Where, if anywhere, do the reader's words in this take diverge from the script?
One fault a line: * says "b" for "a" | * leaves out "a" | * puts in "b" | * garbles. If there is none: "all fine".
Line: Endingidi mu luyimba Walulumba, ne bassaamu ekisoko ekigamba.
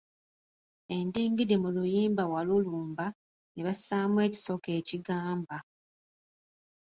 all fine